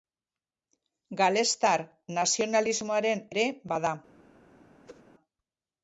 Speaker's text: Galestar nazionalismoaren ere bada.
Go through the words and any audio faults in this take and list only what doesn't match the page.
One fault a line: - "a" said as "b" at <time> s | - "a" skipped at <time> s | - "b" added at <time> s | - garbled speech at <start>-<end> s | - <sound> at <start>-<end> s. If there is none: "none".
- whoosh at 4.9-5.0 s